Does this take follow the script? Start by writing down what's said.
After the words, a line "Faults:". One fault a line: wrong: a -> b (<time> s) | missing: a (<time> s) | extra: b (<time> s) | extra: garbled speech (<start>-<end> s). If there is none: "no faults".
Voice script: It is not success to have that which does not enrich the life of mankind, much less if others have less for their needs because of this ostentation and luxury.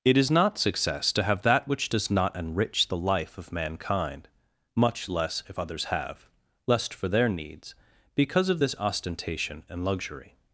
It is not success to have that which does not enrich the life of mankind, much less if others have lest for their needs because of this ostentation and luxury.
Faults:
wrong: less -> lest (6.7 s)